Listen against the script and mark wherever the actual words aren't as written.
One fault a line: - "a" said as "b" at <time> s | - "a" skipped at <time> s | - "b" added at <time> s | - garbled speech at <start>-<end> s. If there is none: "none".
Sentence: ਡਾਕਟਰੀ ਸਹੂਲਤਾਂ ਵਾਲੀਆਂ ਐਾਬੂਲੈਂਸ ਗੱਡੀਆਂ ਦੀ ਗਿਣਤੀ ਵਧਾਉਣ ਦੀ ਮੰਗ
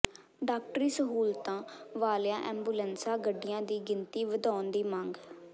none